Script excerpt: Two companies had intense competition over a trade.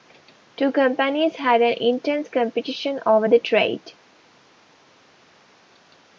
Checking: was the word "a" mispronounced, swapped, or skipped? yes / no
yes